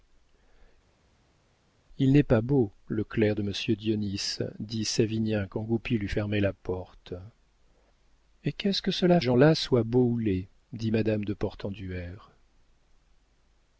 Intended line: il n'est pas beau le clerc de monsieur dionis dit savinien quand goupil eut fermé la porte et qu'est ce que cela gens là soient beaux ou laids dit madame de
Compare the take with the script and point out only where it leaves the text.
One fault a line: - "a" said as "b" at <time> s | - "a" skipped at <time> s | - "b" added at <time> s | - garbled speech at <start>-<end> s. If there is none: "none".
none